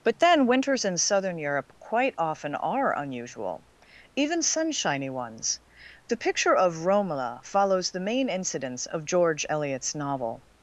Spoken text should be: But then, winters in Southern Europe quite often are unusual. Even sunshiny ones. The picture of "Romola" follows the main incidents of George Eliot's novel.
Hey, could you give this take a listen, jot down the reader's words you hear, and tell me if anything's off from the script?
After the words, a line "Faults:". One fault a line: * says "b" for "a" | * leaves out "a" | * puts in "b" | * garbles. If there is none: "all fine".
But then, winters in Southern Europe quite often are unusual. Even sunshiny ones. The picture of "Romola" follows the main incidents of George Eliot's novel.
Faults:
all fine